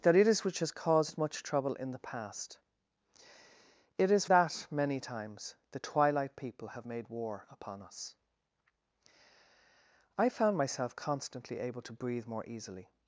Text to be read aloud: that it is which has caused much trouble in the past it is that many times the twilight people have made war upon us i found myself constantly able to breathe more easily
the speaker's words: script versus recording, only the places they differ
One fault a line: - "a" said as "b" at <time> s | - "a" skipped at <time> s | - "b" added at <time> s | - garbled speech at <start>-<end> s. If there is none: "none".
none